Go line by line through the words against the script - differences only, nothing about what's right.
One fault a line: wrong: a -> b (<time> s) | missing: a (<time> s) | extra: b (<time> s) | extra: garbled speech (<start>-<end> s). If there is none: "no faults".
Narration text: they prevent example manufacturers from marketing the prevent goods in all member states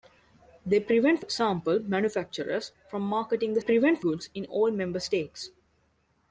no faults